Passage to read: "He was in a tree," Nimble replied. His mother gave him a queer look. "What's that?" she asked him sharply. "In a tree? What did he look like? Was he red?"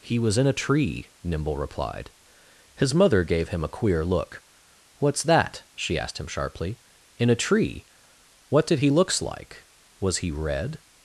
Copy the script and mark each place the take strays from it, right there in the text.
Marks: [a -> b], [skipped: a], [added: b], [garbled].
"He was in a tree," Nimble replied. His mother gave him a queer look. "What's that?" she asked him sharply. "In a tree? What did he [look -> looks] like? Was he red?"